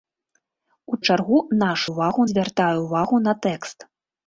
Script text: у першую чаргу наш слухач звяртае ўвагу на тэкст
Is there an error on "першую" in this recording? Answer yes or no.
yes